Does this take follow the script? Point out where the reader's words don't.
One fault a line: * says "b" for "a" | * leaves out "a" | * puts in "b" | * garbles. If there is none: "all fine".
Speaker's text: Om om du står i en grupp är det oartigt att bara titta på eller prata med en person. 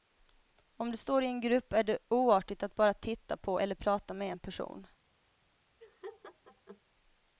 * leaves out "om"